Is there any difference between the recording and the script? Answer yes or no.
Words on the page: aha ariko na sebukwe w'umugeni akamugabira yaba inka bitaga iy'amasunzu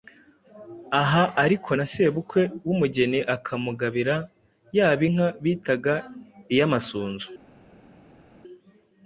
no